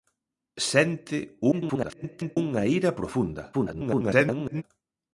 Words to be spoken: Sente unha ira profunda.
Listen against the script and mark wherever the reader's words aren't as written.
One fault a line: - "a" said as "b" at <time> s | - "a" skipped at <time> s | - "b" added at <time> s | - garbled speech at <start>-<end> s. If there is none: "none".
- garbled speech at 1.5-2.4 s
- garbled speech at 3.5-4.6 s